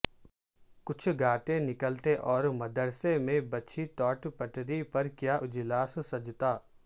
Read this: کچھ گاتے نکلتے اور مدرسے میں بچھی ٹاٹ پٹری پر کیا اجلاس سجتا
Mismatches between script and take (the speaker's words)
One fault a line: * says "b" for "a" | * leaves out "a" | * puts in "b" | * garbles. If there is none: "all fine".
all fine